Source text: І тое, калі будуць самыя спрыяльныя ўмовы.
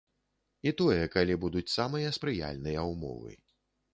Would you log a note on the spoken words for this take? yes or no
no